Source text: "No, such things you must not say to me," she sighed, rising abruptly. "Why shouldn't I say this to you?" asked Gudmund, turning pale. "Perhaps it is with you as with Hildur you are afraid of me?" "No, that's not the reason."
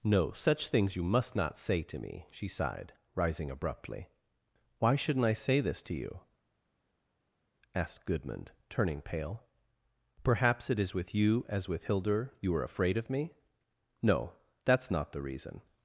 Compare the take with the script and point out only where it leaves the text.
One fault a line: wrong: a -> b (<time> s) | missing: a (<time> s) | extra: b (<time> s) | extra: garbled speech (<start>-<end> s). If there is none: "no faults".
no faults